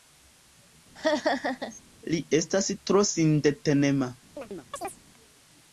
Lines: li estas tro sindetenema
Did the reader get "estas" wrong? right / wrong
right